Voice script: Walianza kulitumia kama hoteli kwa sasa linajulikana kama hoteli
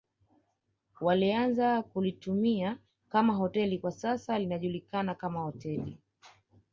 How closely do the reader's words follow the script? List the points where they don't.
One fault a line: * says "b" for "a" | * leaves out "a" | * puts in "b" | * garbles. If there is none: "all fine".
all fine